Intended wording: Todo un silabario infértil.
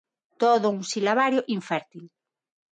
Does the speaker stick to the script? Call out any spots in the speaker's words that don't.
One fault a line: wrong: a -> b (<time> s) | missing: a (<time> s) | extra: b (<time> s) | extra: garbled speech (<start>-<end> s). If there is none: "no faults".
no faults